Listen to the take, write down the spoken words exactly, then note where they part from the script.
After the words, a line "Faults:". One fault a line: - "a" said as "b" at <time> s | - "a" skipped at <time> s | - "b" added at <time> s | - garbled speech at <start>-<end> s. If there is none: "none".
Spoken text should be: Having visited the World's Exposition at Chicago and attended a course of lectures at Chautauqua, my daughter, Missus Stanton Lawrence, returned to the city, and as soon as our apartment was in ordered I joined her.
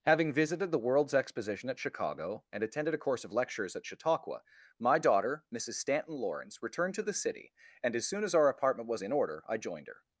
Having visited the World's Exposition at Chicago and attended a course of lectures at Chautauqua, my daughter, Missus Stanton Lawrence, returned to the city, and as soon as our apartment was in order I joined her.
Faults:
- "ordered" said as "order" at 9.1 s